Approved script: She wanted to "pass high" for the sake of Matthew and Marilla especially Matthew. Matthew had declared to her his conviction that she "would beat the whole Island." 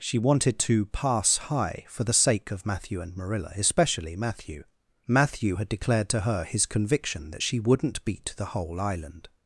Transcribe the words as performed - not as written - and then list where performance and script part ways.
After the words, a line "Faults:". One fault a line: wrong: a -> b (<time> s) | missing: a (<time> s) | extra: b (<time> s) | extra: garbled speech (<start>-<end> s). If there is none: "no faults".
She wanted to "pass high" for the sake of Matthew and Marilla especially Matthew. Matthew had declared to her his conviction that she "wouldn't beat the whole Island."
Faults:
wrong: would -> wouldn't (7.6 s)